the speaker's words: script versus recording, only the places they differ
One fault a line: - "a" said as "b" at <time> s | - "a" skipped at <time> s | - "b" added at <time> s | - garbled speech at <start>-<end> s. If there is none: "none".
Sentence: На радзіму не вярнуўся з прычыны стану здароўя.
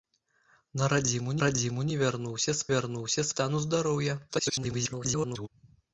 - "радзіму" added at 1.4 s
- "прычыны" said as "вярнуўся" at 2.7 s
- garbled speech at 4.3-5.5 s